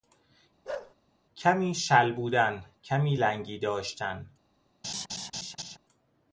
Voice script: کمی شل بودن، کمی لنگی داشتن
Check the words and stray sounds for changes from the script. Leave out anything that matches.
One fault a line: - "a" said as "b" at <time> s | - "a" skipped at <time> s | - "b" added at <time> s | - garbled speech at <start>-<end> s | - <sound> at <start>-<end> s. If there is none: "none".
- bark at 0.6-0.9 s
- laugh at 4.8-5.8 s